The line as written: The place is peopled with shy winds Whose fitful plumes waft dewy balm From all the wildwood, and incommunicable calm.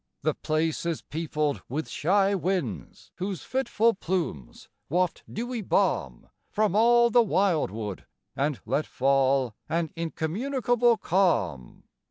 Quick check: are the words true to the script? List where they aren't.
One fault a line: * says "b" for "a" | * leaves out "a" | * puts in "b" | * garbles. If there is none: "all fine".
* puts in "let fall An"